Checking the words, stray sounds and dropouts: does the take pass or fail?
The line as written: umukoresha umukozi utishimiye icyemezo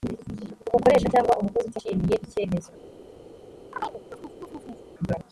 fail